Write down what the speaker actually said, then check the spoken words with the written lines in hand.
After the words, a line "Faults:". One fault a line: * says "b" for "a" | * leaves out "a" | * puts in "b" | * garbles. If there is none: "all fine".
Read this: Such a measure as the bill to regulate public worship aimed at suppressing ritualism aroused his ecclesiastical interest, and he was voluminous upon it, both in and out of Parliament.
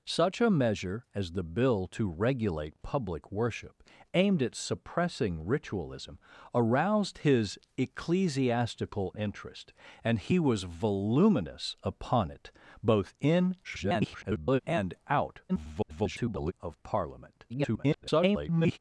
Such a measure as the bill to regulate public worship aimed at suppressing ritualism aroused his ecclesiastical interest, and he was voluminous upon it, both in [garbled] and out [garbled] of Parliament. [garbled]
Faults:
* garbles
* garbles
* garbles